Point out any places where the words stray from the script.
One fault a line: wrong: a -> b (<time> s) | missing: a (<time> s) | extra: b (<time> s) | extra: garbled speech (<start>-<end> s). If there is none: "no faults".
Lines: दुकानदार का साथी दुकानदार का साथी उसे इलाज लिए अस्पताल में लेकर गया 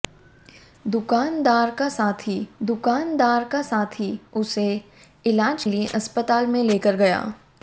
no faults